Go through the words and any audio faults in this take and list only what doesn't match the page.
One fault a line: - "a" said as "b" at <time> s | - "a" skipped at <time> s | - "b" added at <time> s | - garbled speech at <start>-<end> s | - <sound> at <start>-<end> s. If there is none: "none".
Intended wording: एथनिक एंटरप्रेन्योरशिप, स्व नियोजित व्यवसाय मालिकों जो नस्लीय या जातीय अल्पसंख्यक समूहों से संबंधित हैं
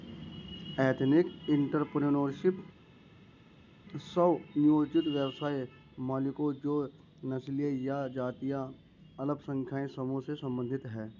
none